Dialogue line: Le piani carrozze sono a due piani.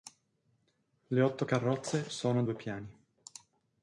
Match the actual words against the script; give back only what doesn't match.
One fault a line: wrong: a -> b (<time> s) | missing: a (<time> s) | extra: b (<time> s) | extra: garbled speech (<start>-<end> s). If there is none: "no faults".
wrong: piani -> otto (1.2 s)